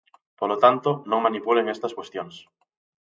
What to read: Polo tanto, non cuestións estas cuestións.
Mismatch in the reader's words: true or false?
true